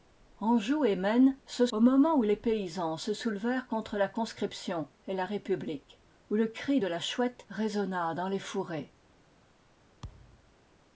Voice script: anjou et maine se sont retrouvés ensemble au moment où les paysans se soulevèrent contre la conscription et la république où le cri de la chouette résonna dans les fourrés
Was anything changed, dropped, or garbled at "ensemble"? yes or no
yes